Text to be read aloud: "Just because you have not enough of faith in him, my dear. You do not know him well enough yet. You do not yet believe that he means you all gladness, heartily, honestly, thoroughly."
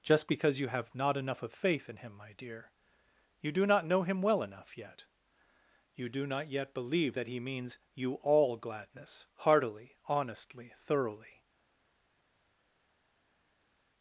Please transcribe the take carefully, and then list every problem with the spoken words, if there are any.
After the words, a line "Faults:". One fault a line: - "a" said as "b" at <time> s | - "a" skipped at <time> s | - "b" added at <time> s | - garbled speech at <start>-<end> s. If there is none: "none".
"Just because you have not enough of faith in him, my dear. You do not know him well enough yet. You do not yet believe that he means you all gladness, heartily, honestly, thoroughly."
Faults:
none